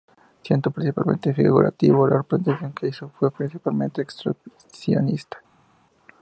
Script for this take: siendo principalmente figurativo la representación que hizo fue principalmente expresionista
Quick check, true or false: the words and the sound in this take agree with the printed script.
true